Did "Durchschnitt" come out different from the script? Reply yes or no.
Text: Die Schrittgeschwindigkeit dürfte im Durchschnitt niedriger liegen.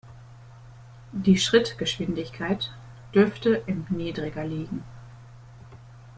yes